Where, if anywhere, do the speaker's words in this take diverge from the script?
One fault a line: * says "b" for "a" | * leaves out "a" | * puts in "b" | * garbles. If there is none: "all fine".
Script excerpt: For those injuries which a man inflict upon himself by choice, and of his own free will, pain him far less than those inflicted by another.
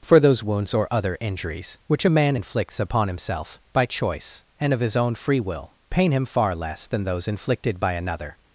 * puts in "wounds or other"
* says "inflicts" for "inflict"